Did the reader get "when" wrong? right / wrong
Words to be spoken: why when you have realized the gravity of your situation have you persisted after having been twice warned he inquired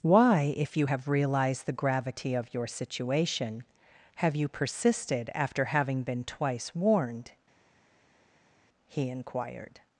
wrong